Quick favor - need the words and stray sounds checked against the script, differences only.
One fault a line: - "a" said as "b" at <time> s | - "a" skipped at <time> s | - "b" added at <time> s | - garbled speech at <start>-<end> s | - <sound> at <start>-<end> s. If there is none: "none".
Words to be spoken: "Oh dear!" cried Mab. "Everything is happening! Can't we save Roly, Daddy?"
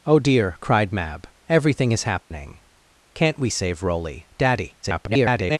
- dropout at 2.2-2.3 s
- garbled speech at 4.8-5.6 s